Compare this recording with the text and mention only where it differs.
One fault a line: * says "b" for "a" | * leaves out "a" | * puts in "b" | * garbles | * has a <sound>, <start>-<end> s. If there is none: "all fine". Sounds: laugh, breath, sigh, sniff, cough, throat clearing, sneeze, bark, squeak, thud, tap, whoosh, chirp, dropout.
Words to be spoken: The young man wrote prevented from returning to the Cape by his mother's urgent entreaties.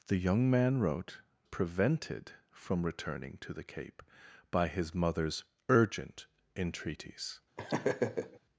* has a laugh, 7.6-8.4 s